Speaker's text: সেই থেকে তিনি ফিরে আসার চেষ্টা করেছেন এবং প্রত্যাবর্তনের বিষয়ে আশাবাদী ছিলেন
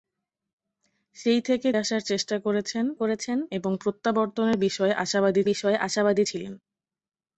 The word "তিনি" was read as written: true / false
false